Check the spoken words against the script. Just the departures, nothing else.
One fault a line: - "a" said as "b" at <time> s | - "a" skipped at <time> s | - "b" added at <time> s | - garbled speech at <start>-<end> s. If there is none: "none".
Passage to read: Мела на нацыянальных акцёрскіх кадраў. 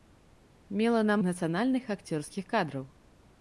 none